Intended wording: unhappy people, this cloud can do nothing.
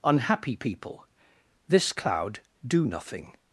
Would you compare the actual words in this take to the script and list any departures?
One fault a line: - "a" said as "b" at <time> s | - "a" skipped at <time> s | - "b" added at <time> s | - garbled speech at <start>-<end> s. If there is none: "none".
- "can" skipped at 2.4 s